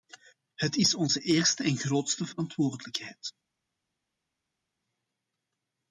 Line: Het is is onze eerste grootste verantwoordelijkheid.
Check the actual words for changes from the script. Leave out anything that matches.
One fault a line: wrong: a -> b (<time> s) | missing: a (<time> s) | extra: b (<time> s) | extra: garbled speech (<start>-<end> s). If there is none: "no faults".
missing: is (0.9 s)
extra: en (1.6 s)